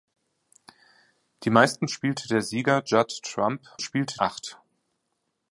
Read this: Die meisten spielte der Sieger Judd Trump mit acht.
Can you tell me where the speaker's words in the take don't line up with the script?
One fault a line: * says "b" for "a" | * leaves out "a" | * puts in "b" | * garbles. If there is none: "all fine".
* says "spielte" for "mit"